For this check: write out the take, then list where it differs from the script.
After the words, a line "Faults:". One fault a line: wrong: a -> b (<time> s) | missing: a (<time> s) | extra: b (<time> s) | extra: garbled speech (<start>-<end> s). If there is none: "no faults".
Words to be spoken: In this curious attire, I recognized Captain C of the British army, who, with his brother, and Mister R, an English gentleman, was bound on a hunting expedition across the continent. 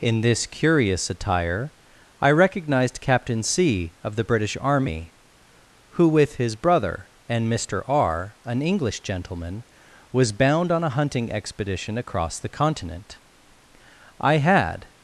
In this curious attire, I recognized Captain C of the British army, who, with his brother, and Mister R, an English gentleman, was bound on a hunting expedition across the continent. I had
Faults:
extra: I had (14.2 s)